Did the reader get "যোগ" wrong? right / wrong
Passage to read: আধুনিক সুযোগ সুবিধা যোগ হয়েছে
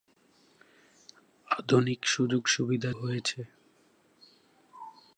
wrong